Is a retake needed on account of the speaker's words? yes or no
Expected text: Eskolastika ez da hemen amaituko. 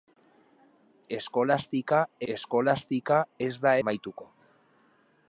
yes